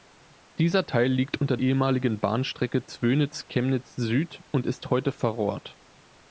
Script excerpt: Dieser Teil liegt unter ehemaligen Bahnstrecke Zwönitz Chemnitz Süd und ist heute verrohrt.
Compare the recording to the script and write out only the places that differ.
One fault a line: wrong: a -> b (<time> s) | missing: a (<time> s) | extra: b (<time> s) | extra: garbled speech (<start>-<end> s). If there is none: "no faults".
no faults